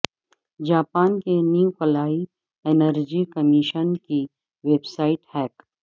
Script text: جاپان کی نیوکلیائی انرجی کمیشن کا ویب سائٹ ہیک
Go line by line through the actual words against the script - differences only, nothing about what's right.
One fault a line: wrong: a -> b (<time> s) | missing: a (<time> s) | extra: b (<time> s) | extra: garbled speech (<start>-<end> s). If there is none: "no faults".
wrong: کی -> کے (1.2 s)
wrong: کا -> کی (4.0 s)